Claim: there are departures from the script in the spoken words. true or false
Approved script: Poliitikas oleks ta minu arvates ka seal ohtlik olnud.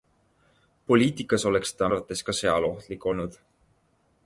true